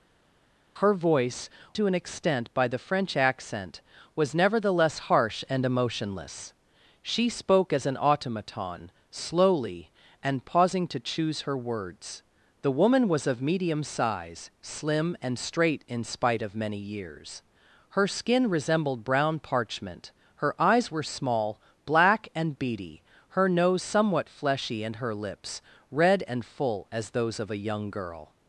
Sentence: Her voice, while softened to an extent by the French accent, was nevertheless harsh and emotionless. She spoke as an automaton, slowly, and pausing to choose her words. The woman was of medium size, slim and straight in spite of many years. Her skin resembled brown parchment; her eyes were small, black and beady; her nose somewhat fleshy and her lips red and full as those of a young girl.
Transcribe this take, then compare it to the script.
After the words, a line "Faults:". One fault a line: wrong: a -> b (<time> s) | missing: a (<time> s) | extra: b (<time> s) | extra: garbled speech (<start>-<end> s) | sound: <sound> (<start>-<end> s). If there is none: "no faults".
Her voice, to an extent by the French accent, was nevertheless harsh and emotionless. She spoke as an automaton, slowly, and pausing to choose her words. The woman was of medium size, slim and straight in spite of many years. Her skin resembled brown parchment; her eyes were small, black and beady; her nose somewhat fleshy and her lips red and full as those of a young girl.
Faults:
missing: while softened (1.5 s)